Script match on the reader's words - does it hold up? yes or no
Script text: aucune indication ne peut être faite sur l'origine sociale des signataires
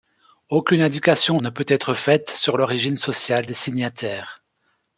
yes